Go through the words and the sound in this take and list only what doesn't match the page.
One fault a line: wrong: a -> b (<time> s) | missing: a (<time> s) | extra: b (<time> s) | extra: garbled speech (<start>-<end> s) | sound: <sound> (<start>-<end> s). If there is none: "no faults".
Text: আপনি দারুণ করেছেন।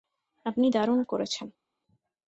no faults